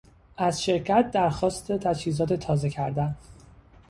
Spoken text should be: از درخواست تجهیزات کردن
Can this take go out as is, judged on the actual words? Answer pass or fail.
fail